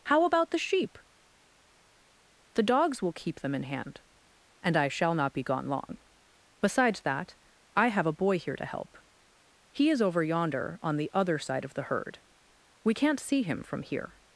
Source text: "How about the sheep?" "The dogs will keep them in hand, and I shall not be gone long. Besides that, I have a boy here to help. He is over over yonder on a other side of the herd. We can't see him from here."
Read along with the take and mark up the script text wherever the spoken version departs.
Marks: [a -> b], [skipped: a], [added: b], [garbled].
"How about the sheep?" "The dogs will keep them in hand, and I shall not be gone long. Besides that, I have a boy here to help. He is over [skipped: over] yonder on [a -> the] other side of the herd. We can't see him from here."